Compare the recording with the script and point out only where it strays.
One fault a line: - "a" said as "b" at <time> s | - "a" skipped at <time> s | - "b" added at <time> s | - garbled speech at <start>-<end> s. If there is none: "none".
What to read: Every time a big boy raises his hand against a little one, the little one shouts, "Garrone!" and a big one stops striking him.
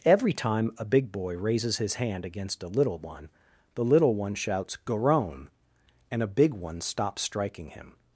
none